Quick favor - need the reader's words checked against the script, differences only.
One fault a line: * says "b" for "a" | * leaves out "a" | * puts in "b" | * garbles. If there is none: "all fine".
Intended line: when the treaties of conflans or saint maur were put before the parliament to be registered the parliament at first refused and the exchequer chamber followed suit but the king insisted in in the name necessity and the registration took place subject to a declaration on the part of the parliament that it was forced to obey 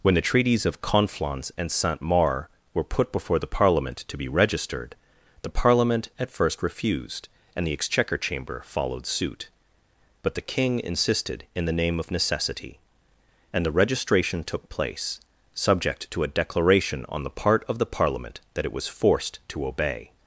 * says "and" for "or"
* leaves out "in"
* puts in "of"